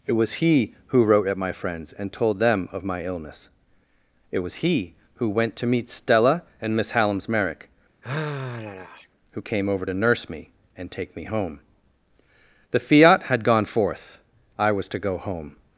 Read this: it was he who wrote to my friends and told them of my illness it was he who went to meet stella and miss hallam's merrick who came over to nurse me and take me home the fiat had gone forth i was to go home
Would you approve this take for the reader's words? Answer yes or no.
no